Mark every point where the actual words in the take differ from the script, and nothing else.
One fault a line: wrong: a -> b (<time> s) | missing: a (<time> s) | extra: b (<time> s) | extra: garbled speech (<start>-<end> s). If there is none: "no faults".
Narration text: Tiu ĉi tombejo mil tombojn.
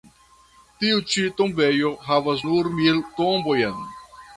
extra: havas nur (2.1 s)